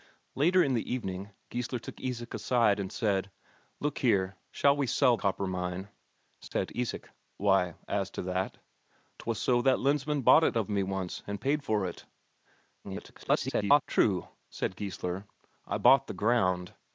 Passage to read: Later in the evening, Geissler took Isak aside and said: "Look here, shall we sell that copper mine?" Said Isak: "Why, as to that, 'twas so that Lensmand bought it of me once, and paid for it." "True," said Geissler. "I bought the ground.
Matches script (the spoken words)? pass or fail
fail